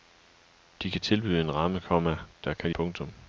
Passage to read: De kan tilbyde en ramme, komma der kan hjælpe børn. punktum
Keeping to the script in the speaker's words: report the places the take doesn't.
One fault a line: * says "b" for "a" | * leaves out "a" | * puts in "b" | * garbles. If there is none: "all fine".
* leaves out "hjælpe børn"